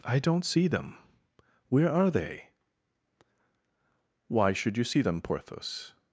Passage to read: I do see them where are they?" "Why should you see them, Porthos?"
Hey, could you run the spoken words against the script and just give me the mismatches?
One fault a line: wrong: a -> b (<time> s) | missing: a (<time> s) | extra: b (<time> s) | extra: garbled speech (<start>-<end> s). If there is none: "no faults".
wrong: do -> don't (0.2 s)